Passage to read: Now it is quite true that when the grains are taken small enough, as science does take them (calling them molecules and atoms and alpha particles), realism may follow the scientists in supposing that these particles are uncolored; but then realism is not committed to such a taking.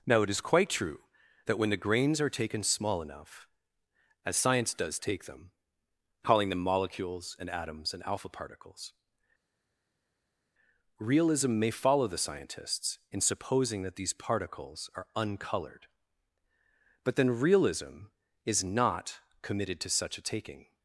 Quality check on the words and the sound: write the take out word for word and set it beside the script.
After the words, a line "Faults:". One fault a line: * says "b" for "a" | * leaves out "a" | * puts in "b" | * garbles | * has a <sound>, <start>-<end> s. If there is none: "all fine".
Now it is quite true that when the grains are taken small enough, as science does take them (calling them molecules and atoms and alpha particles), realism may follow the scientists in supposing that these particles are uncolored; but then realism is not committed to such a taking.
Faults:
all fine